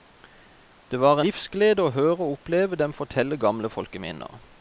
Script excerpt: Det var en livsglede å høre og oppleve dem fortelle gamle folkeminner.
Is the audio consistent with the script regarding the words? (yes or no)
no